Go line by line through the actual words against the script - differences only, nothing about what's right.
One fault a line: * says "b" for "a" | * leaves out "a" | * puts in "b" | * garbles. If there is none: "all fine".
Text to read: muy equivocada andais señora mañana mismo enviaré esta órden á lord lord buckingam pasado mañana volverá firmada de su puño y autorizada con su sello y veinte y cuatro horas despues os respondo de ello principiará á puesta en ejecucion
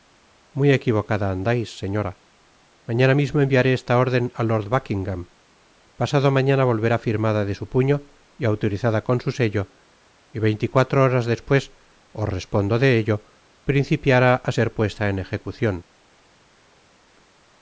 * leaves out "lord"
* puts in "ser"